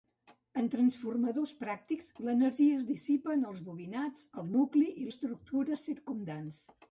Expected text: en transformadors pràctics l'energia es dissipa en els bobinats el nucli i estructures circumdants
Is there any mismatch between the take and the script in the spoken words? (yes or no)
no